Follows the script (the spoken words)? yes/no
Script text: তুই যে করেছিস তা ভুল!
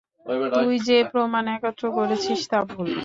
no